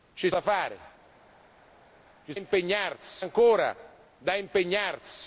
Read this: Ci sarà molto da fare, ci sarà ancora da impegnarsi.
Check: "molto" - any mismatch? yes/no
yes